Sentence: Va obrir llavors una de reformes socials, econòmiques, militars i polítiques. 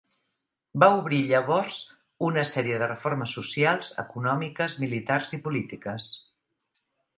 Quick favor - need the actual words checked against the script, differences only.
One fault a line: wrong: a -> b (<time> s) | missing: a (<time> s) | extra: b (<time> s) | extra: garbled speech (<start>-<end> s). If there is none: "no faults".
extra: sèrie (2.5 s)